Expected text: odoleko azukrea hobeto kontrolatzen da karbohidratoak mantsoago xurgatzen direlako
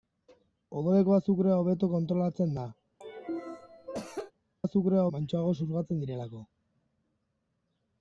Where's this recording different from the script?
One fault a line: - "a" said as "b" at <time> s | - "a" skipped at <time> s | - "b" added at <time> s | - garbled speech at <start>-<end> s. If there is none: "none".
- "karbohidratoak" said as "azukrea" at 4.6 s